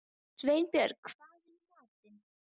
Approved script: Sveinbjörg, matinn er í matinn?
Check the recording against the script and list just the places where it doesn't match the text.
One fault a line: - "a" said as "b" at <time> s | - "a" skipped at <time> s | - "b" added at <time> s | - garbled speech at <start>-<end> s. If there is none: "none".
- "matinn" said as "hvað" at 1.1 s